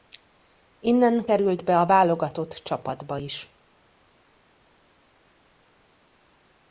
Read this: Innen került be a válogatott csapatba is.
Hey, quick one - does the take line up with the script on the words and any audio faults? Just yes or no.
yes